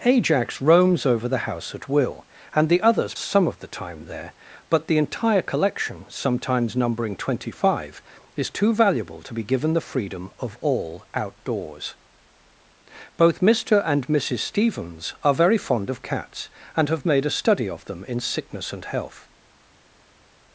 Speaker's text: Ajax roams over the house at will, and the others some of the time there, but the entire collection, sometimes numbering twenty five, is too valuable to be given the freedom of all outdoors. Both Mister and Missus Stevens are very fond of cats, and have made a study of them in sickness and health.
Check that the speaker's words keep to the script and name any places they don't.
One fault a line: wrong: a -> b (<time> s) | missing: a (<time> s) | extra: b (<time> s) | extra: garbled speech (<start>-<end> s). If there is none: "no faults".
no faults